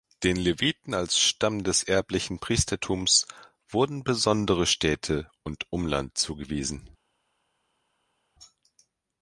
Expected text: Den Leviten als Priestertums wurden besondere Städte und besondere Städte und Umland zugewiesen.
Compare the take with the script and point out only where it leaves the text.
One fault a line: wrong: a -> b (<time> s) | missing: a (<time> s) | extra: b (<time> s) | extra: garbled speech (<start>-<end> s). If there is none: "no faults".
wrong: Priestertums wurden besondere Städte und -> Stamm des erblichen Priestertums wurden (1.2 s)